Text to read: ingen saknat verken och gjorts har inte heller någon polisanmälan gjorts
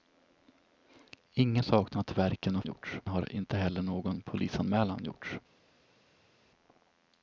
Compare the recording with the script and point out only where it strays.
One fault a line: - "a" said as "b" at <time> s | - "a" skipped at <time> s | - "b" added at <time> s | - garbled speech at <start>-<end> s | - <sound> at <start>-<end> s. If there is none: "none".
none